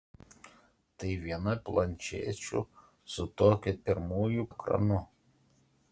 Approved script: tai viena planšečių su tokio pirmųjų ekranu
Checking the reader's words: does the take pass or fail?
pass